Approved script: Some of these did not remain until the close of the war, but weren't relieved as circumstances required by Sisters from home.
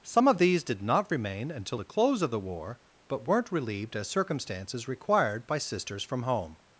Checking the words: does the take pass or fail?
pass